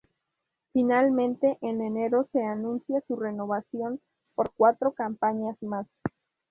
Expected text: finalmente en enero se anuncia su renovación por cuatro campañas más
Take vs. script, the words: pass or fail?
pass